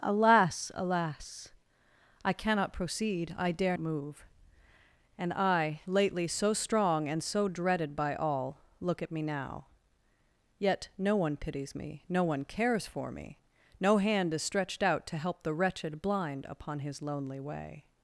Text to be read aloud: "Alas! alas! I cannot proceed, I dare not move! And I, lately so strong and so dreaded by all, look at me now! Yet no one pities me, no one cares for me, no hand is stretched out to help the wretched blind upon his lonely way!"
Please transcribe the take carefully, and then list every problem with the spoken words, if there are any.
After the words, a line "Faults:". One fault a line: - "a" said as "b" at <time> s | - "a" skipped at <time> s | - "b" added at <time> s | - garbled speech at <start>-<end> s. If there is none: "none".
"Alas! alas! I cannot proceed, I dare move! And I, lately so strong and so dreaded by all, look at me now! Yet no one pities me, no one cares for me, no hand is stretched out to help the wretched blind upon his lonely way!"
Faults:
- "not" skipped at 3.8 s